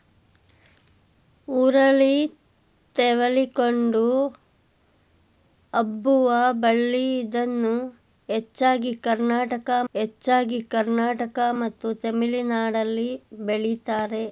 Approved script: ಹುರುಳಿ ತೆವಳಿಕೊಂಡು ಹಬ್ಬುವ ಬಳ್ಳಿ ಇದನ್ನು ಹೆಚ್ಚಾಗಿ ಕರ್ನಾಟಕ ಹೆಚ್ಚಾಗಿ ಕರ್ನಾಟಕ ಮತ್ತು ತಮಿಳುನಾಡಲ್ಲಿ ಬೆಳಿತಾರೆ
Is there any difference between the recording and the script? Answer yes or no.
no